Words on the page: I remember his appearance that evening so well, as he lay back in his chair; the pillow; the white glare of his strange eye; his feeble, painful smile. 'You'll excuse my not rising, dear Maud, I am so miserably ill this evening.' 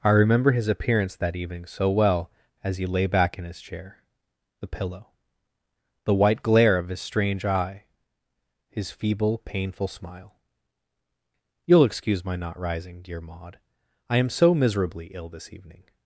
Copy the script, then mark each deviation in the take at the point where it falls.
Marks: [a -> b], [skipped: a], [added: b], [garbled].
I remember his appearance that evening so well, as he lay back in his chair; the pillow; the white glare of his strange eye; his feeble, painful smile. 'You'll excuse my not rising, dear Maud, I am so miserably ill this evening.'